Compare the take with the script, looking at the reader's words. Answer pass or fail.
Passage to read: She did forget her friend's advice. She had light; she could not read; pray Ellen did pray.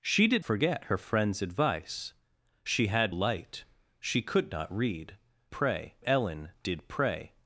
pass